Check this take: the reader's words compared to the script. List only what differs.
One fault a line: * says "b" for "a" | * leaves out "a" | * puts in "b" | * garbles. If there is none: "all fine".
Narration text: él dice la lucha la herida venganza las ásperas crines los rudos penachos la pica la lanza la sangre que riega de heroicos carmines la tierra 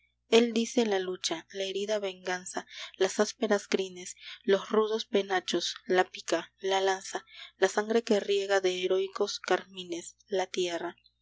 all fine